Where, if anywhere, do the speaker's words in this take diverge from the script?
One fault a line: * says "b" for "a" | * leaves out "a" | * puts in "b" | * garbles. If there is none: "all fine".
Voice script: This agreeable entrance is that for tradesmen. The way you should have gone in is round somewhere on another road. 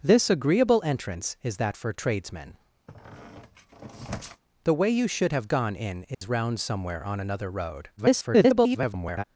* garbles